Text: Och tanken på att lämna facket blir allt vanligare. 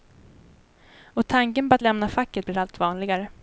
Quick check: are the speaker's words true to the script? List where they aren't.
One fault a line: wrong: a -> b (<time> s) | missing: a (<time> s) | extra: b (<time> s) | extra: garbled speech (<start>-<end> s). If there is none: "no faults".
no faults